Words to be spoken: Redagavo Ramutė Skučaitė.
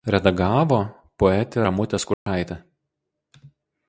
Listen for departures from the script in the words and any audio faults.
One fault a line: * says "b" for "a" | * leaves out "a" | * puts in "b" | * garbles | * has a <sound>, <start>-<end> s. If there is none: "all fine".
* puts in "poetė"
* has a dropout, 2.1-2.3 s